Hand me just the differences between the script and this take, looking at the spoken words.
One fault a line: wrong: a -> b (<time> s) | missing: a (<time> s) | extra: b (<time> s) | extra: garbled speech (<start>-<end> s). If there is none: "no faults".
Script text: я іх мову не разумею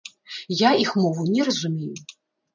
no faults